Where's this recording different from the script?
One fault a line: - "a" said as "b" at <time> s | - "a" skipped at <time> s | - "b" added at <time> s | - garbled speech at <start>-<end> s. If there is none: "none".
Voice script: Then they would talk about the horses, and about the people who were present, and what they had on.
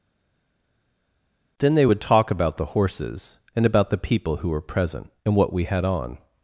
- "they" said as "we" at 5.5 s